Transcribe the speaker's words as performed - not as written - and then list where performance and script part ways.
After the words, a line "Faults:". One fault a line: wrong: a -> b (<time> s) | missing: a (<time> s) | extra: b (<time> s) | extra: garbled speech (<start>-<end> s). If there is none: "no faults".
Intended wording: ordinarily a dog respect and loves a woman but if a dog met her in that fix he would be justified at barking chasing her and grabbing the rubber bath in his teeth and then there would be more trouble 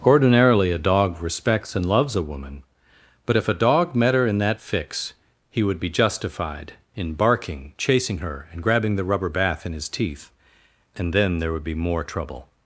ordinarily a dog respects and loves a woman but if a dog met her in that fix he would be justified in barking chasing her and grabbing the rubber bath in his teeth and then there would be more trouble
Faults:
wrong: respect -> respects (1.2 s)
wrong: at -> in (7.0 s)